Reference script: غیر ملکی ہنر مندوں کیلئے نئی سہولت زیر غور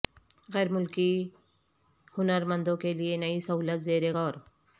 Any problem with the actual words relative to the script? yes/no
no